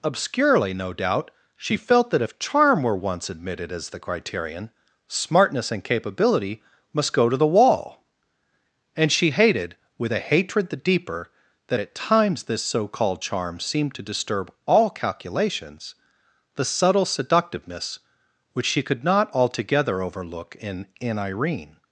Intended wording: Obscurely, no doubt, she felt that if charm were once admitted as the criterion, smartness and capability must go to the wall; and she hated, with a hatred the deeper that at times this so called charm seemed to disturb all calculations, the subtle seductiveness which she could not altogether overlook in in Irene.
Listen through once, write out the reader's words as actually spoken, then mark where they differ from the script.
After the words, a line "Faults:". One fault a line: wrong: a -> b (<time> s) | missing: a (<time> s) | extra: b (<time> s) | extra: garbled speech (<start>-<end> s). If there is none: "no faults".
Obscurely, no doubt, she felt that if charm were once admitted as the criterion, smartness and capability must go to the wall; and she hated, with a hatred the deeper that at times this so called charm seemed to disturb all calculations, the subtle seductiveness which she could not altogether overlook in in Irene.
Faults:
no faults